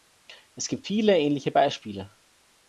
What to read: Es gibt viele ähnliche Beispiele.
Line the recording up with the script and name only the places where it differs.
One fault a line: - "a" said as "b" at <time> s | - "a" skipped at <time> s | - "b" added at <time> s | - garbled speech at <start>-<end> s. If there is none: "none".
none